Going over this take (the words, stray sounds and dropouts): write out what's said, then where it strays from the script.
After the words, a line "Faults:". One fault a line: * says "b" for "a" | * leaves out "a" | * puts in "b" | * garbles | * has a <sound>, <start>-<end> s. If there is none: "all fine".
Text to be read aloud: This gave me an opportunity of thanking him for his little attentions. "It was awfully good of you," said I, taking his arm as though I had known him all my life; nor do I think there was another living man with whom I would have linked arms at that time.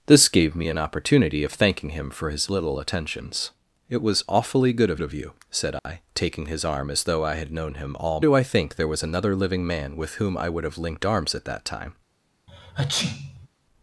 This gave me an opportunity of thanking him for his little attentions. "It was awfully good of of you," said I, taking his arm as though I had known him all do I think there was another living man with whom I would have linked arms at that time.
Faults:
* puts in "of"
* has a dropout, 5.8-5.9 s
* leaves out "my life nor"
* has a sneeze, 12.5-13.5 s